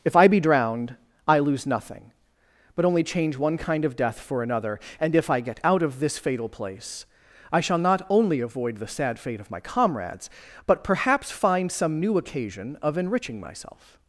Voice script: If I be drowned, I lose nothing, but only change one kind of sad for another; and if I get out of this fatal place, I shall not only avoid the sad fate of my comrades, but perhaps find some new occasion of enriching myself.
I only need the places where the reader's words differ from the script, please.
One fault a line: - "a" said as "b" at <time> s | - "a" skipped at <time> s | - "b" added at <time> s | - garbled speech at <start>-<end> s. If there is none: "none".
- "sad" said as "death" at 4.0 s